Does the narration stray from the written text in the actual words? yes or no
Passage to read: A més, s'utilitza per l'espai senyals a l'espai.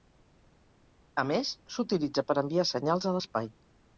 yes